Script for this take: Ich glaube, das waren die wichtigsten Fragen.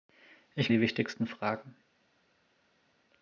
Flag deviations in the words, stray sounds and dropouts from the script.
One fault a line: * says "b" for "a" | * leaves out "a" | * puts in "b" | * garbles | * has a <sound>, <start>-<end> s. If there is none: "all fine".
* leaves out "glaube das waren"